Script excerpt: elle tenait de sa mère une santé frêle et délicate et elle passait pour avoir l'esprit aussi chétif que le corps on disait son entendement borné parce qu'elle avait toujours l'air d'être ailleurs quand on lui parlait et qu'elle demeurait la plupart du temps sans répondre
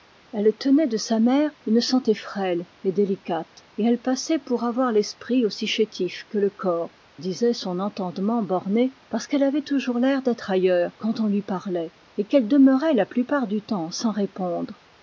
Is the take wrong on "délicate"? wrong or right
right